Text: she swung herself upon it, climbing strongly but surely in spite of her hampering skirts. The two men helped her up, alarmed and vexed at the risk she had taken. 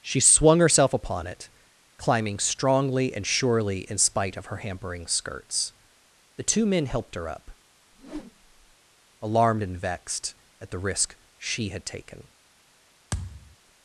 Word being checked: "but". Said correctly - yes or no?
no